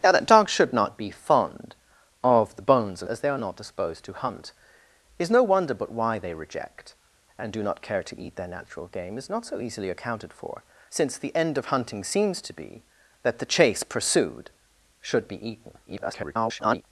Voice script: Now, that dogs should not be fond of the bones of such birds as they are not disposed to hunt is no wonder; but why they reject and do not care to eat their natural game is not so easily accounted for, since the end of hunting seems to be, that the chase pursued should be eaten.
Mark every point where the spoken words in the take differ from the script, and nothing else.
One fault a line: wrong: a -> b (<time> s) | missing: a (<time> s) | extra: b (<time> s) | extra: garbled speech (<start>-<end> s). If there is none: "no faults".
missing: such birds (3.1 s)
extra: garbled speech (15.9-16.8 s)